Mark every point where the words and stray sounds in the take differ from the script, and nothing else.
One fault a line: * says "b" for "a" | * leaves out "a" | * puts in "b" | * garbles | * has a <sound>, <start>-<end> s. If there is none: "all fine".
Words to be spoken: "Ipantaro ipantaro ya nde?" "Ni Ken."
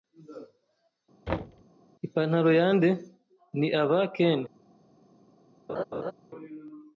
* has a thud, 1.3-1.6 s
* leaves out "ipantaro"
* puts in "aba"
* has a laugh, 5.7-6.1 s